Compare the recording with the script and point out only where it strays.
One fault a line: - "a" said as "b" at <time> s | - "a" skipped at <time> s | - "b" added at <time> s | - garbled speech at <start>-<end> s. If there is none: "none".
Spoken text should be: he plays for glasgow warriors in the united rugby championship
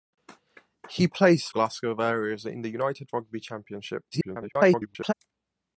- "for" skipped at 1.5 s
- garbled speech at 4.1-5.1 s